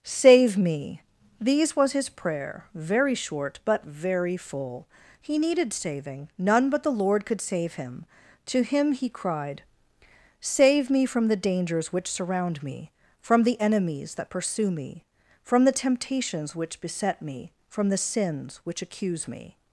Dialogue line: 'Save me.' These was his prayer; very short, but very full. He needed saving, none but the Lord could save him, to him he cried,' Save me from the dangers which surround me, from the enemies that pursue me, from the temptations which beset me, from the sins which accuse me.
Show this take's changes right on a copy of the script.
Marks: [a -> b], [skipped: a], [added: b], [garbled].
'Save me.' These was his prayer; very short, but very full. He needed saving, none but the Lord could save him, to him he cried,' Save me from the dangers which surround me, from the enemies that pursue me, from the temptations which beset me, from the sins which accuse me.